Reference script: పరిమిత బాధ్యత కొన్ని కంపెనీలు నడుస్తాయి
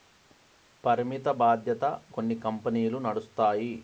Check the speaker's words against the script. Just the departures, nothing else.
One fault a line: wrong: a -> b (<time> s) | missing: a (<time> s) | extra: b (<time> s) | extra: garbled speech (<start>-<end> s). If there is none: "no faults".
no faults